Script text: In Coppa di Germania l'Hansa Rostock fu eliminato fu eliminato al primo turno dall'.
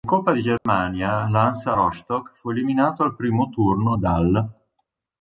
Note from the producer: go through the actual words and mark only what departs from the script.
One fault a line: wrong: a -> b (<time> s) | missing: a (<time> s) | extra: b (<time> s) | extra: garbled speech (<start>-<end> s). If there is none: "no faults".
missing: fu eliminato (3.0 s)